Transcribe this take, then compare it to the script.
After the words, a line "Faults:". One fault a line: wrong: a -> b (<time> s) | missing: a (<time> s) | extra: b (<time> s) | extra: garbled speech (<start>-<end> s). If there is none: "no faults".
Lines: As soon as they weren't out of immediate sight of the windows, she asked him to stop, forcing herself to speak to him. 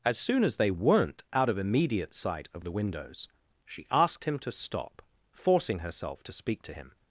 As soon as they weren't out of immediate sight of the windows, she asked him to stop, forcing herself to speak to him.
Faults:
no faults